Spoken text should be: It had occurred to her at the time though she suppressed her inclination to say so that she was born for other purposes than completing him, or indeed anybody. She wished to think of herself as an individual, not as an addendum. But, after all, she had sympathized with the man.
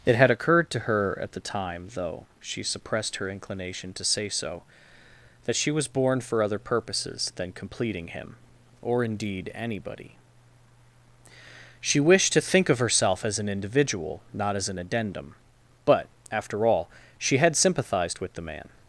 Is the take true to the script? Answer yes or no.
yes